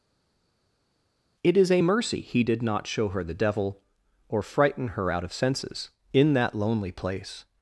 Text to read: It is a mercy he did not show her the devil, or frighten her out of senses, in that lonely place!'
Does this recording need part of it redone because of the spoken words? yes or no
no